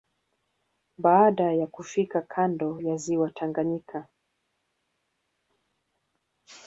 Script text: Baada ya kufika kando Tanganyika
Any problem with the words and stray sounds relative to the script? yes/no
yes